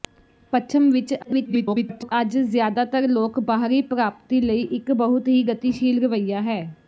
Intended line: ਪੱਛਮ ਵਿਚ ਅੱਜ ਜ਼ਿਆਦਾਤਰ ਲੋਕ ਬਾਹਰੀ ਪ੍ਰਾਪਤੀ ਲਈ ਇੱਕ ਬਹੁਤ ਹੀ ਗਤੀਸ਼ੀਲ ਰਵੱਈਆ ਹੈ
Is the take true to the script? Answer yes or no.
no